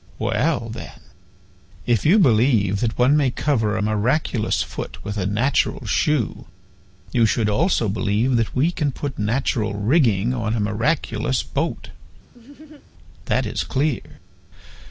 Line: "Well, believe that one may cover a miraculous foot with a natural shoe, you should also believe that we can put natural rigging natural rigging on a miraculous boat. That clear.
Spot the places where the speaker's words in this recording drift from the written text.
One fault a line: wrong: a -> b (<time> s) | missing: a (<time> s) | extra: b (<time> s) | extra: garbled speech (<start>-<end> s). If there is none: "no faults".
extra: then if you (0.7 s)
missing: natural rigging (10.3 s)
extra: is (13.4 s)